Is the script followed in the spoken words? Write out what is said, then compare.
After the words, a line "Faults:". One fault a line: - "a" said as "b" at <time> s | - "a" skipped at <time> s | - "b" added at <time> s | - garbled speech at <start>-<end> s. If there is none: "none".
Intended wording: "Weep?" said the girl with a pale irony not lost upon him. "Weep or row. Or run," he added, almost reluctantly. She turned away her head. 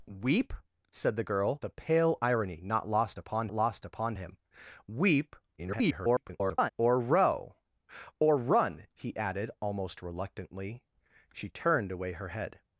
"Weep?" said the girl a pale irony not lost upon lost upon him. "Weep [garbled] or row. Or run," he added, almost reluctantly. She turned away her head.
Faults:
- "with" skipped at 1.6 s
- "lost upon" added at 3.5 s
- garbled speech at 5.6-6.7 s